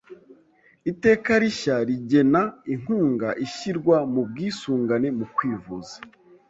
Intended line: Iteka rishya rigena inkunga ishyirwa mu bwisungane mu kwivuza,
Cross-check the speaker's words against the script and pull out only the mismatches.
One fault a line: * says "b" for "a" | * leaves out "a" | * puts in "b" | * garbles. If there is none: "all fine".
all fine